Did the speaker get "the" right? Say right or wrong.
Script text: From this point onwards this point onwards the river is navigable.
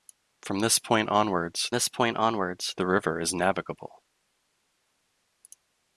right